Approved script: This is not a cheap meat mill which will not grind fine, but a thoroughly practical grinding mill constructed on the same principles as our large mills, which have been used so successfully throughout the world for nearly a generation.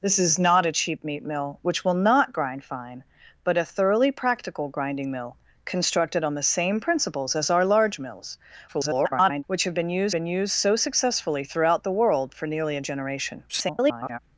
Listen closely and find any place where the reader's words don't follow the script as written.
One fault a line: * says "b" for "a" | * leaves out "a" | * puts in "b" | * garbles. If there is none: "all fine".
* garbles
* puts in "been used"
* garbles